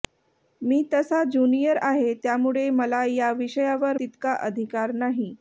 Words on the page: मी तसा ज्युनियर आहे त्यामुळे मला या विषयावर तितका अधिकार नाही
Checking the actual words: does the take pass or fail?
pass